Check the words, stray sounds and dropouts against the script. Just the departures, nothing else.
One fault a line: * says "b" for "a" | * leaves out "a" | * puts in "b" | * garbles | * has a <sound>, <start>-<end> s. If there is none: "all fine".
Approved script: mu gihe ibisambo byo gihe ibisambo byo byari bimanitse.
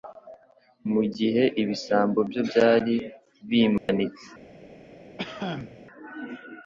* leaves out "gihe ibisambo byo"
* has a dropout, 3.8-3.9 s
* has a cough, 5.2-5.8 s